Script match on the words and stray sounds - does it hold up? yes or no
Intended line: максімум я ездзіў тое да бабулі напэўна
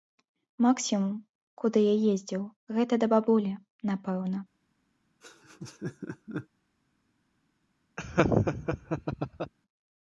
no